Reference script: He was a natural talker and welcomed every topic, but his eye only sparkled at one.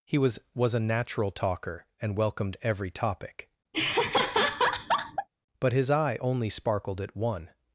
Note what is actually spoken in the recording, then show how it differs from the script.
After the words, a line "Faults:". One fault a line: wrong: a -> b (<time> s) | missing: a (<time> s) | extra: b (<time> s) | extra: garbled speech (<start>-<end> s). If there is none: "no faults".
He was was a natural talker and welcomed every topic, but his eye only sparkled at one.
Faults:
extra: was (0.6 s)